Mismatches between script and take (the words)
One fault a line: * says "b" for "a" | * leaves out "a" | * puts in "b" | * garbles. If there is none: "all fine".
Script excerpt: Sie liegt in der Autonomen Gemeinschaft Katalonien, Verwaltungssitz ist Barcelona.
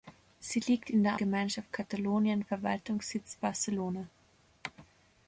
* leaves out "Autonomen"
* leaves out "ist"